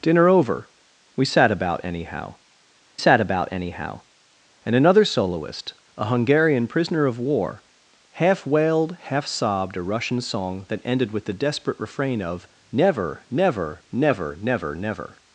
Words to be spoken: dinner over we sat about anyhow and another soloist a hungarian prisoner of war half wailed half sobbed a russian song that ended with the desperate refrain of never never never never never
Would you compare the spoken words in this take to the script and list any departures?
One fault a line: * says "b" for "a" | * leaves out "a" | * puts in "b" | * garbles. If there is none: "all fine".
* puts in "sat about anyhow"